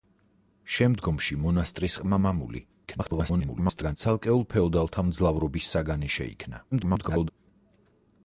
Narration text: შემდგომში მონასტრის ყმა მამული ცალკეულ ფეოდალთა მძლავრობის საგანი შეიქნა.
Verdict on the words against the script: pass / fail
fail